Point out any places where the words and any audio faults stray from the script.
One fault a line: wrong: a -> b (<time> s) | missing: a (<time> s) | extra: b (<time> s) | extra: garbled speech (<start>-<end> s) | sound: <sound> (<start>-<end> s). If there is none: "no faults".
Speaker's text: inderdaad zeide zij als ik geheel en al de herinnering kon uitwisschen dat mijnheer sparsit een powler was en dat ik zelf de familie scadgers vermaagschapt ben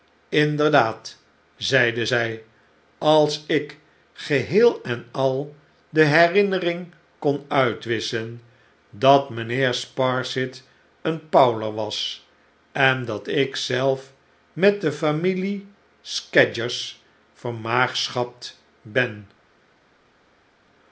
extra: met (14.5 s)